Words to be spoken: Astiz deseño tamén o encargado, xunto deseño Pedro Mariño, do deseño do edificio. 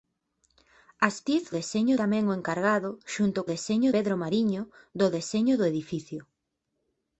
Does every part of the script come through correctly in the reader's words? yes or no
yes